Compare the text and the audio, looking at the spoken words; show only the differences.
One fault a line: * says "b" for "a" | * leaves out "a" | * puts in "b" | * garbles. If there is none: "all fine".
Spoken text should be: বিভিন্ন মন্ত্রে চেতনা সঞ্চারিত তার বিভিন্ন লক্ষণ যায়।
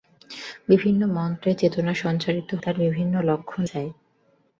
all fine